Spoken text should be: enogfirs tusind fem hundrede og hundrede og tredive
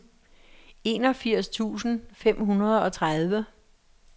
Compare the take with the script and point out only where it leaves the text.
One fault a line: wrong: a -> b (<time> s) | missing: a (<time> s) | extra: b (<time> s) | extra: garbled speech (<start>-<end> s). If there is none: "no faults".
missing: hundrede og (2.9 s)